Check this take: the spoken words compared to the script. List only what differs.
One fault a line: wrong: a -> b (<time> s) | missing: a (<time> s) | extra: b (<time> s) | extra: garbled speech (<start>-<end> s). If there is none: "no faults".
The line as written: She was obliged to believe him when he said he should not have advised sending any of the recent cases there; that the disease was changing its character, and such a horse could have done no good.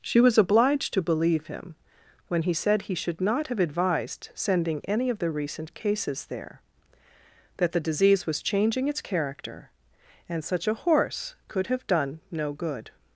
no faults